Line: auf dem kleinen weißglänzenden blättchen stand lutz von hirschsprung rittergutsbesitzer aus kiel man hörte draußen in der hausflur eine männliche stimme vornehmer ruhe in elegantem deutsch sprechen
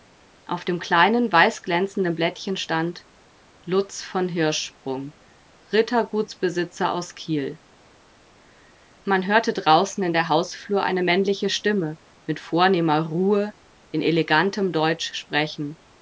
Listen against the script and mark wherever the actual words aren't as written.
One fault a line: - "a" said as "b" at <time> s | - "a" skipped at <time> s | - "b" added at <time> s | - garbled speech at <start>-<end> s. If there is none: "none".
- "mit" added at 12.3 s